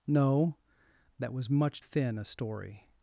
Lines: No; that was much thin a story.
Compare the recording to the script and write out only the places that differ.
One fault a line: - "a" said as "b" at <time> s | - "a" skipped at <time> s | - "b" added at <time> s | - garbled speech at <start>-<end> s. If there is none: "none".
none